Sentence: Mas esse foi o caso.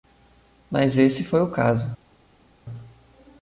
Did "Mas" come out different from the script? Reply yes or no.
no